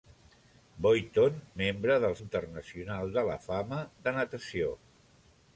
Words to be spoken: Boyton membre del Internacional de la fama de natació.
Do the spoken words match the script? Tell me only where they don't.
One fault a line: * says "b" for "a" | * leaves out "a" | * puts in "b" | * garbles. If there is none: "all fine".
all fine